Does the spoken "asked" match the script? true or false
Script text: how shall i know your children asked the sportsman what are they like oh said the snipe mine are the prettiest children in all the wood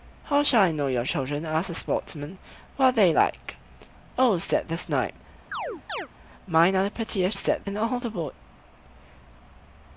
true